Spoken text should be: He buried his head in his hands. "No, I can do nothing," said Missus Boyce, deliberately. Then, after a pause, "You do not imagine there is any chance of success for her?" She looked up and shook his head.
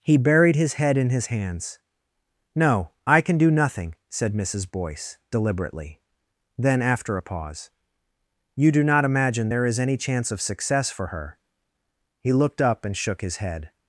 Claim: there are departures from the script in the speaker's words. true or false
true